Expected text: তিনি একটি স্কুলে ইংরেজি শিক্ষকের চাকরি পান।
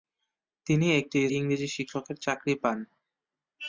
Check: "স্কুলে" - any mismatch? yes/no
yes